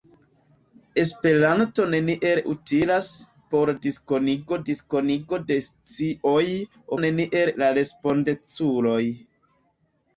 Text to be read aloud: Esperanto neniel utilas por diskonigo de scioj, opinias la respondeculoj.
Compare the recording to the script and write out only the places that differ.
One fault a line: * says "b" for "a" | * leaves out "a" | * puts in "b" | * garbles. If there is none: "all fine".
* puts in "diskonigo"
* says "neniel" for "opinias"